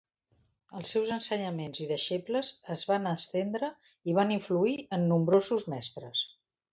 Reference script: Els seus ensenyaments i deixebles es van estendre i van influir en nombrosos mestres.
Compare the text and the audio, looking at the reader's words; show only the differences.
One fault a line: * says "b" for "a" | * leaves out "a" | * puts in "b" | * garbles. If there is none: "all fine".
all fine